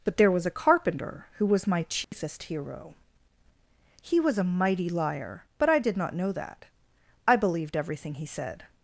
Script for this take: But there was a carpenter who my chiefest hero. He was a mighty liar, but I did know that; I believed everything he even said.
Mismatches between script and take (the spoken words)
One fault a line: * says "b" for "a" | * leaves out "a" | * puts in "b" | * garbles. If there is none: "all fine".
* puts in "was"
* puts in "not"
* leaves out "even"